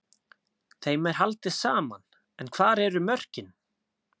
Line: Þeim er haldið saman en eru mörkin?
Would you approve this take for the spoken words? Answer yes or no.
no